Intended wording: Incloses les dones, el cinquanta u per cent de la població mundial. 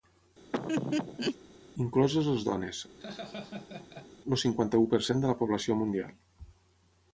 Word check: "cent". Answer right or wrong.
right